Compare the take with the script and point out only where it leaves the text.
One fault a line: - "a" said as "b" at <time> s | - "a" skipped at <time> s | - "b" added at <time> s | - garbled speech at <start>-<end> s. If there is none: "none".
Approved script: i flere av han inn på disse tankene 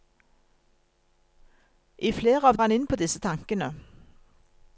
none